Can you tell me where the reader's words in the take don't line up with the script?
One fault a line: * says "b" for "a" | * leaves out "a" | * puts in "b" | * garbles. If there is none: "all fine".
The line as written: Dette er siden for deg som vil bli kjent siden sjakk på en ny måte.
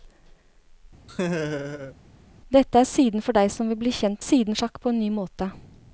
all fine